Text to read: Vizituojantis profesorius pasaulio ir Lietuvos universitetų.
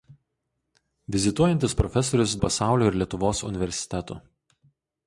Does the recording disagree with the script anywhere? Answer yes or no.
no